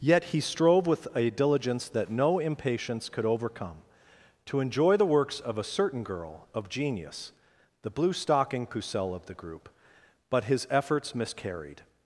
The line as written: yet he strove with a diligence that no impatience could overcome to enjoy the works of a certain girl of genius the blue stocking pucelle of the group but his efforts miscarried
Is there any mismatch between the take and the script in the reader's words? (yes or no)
no